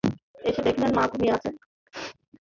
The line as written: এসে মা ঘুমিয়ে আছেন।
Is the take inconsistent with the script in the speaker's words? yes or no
yes